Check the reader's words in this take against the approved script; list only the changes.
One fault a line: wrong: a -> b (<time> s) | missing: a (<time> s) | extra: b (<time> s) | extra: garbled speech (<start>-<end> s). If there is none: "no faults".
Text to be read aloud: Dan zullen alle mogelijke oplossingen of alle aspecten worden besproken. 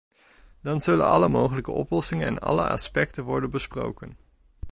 wrong: of -> en (2.3 s)